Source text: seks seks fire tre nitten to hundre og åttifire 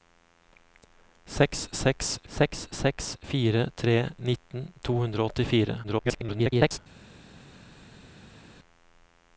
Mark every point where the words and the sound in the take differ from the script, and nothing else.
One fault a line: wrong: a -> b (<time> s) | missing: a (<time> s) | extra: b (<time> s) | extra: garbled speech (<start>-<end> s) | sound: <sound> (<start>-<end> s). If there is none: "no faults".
extra: seks seks (2.3 s)
extra: garbled speech (5.8-6.8 s)